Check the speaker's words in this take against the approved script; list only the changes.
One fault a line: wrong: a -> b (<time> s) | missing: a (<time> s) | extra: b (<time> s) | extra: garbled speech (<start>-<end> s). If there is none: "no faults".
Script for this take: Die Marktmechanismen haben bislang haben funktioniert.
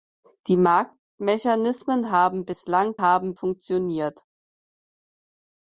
no faults